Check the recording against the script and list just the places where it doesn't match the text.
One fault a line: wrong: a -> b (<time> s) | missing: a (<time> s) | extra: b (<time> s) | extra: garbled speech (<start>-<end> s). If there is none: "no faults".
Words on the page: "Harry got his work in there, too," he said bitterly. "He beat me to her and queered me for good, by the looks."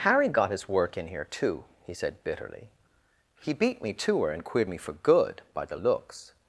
wrong: there -> here (1.1 s)